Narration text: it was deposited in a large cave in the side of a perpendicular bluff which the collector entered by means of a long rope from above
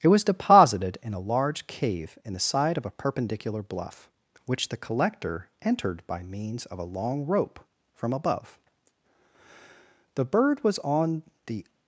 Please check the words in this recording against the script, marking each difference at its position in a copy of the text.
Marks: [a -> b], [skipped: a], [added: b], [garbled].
it was deposited in a large cave in the side of a perpendicular bluff which the collector entered by means of a long rope from above [added: the bird was on the]